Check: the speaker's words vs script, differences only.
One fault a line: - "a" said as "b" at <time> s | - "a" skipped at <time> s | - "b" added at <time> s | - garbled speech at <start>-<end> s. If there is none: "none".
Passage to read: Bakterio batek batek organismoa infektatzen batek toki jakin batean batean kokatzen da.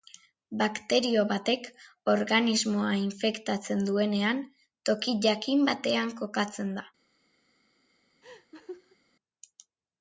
- "batek" skipped at 1.7 s
- "batek" said as "duenean" at 3.9 s
- "batean" skipped at 6.2 s